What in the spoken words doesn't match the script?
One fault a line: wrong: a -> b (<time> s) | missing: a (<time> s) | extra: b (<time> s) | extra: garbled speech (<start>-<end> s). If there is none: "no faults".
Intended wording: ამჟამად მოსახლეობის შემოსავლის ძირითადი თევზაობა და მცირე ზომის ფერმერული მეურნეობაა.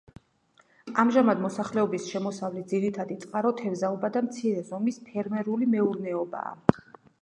extra: წყარო (3.3 s)